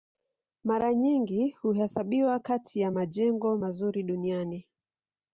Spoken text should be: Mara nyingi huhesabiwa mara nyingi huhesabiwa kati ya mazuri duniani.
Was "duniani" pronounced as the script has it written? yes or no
yes